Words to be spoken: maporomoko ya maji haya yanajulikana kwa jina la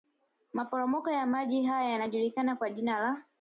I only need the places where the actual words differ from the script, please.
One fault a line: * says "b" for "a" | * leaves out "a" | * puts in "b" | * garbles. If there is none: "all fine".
all fine